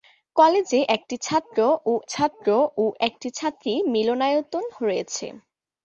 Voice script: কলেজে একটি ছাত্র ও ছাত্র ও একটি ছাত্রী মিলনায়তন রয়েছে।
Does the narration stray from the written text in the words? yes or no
no